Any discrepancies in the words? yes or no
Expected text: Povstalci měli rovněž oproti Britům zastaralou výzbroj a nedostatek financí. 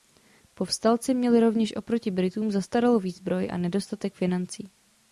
no